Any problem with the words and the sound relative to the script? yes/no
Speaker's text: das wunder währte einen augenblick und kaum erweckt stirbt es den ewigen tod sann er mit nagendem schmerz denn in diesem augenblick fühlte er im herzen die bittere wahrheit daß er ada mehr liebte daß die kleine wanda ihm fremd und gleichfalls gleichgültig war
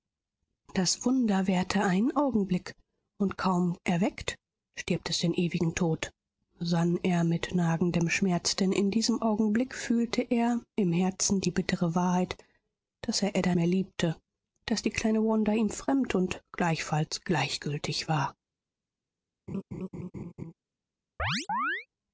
yes